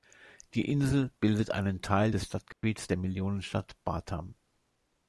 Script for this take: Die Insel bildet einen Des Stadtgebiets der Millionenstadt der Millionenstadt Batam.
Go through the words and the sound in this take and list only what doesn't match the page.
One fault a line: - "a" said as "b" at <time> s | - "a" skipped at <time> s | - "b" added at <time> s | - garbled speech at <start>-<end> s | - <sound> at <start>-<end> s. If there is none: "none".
- "Teil" added at 1.8 s
- dropout at 2.5-2.6 s
- "der Millionenstadt" skipped at 3.8 s